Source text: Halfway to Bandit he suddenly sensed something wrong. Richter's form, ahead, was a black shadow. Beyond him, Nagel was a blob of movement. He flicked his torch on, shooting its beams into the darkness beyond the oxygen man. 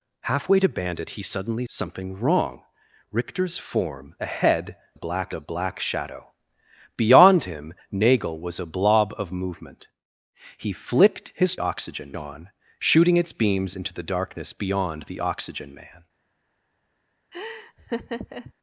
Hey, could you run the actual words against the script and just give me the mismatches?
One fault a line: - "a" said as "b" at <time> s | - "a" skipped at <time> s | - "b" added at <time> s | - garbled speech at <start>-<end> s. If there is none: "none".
- "sensed" skipped at 1.6 s
- "was" said as "black" at 4.9 s
- "torch" said as "oxygen" at 11.6 s